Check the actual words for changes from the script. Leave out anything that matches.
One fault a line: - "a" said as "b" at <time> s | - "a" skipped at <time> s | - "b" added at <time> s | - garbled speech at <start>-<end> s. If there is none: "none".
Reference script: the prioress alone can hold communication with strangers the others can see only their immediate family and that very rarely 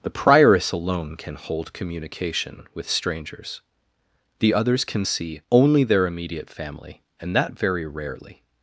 none